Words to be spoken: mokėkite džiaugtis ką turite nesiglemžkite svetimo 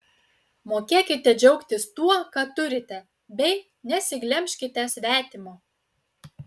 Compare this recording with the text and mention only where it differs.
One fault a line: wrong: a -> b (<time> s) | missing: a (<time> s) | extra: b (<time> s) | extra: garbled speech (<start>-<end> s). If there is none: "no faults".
extra: tuo (2.0 s)
extra: bei (3.4 s)